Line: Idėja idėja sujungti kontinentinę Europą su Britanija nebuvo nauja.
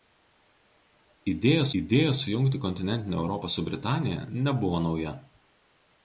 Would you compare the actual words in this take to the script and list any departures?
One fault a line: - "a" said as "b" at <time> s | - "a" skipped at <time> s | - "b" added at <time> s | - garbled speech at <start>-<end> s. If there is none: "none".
none